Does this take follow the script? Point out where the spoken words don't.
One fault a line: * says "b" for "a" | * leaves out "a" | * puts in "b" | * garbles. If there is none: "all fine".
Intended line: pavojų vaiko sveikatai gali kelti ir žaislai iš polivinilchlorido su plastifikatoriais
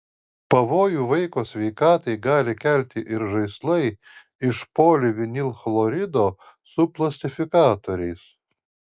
all fine